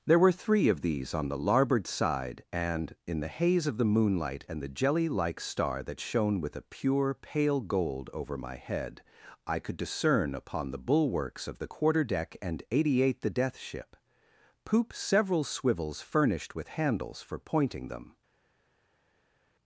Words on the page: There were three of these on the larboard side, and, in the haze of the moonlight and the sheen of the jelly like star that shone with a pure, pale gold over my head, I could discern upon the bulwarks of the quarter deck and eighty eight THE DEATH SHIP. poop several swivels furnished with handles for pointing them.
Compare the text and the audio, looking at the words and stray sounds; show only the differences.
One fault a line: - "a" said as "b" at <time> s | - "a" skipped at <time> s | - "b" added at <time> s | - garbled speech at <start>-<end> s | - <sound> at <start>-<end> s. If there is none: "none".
- "sheen of the" skipped at 4.7 s